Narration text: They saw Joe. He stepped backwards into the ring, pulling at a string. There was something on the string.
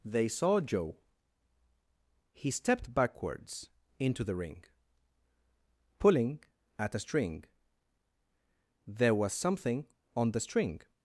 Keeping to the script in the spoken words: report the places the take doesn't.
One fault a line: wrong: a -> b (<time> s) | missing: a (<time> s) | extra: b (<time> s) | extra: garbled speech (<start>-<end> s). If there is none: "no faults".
no faults